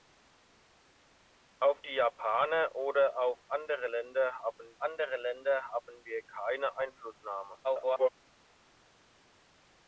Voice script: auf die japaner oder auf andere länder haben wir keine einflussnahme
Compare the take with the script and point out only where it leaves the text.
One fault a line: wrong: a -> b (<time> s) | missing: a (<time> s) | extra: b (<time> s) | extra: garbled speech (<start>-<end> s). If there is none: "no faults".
extra: andere länder haben (4.8 s)
extra: garbled speech (7.6-8.1 s)